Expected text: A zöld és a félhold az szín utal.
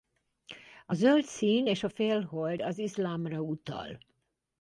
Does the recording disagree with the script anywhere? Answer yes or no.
yes